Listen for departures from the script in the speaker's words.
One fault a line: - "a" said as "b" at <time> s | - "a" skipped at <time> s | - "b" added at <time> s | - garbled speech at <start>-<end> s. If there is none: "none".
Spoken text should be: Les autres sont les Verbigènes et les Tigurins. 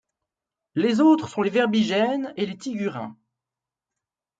none